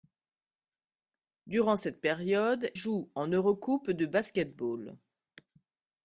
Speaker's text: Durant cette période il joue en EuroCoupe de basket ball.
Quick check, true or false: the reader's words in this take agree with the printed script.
false